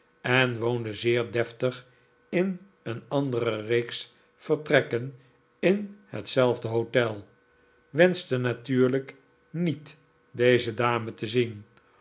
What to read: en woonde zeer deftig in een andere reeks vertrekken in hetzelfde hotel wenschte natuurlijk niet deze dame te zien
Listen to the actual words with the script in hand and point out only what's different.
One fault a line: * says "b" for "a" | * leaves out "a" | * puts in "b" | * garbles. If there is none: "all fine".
all fine